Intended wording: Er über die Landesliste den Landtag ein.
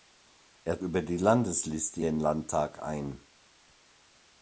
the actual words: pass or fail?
pass